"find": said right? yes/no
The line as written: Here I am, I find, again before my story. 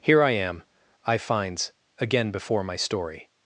no